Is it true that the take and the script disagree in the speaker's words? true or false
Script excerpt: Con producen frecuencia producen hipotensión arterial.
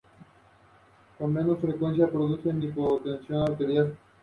true